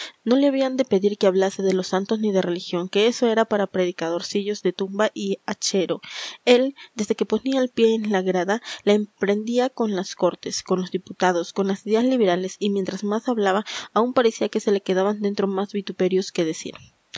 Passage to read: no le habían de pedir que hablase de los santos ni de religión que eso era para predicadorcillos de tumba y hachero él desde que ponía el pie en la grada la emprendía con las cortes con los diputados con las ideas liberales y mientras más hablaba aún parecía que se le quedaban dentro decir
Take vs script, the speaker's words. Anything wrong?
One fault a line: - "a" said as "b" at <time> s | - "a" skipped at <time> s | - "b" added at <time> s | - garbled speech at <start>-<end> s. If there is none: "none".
- "más vituperios que" added at 15.5 s